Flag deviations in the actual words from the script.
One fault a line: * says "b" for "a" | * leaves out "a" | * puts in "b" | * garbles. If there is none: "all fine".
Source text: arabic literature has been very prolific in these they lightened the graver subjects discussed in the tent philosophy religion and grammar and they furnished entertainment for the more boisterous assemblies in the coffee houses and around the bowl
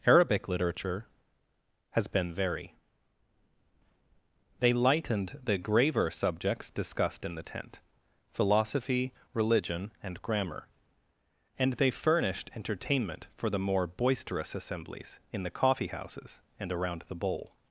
* leaves out "prolific in these"